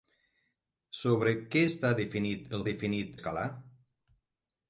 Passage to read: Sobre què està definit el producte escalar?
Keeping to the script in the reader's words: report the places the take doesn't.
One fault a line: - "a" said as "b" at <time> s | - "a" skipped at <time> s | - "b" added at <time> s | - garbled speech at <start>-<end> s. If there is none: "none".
- "producte" said as "definit" at 2.7 s